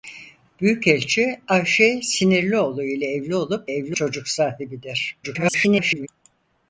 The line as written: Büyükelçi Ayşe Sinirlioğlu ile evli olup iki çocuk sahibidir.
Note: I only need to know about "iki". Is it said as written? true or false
false